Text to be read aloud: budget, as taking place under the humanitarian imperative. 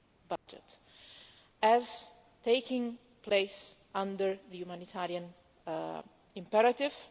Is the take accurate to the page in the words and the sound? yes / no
no